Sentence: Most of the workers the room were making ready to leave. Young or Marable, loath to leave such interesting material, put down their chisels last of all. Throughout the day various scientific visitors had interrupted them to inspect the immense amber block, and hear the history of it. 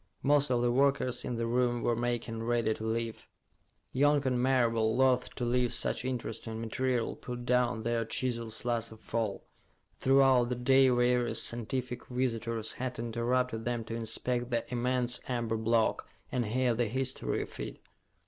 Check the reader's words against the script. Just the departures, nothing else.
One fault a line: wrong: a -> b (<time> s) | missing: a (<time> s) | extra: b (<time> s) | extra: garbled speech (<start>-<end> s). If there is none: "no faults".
extra: in (1.2 s)
wrong: or -> and (4.3 s)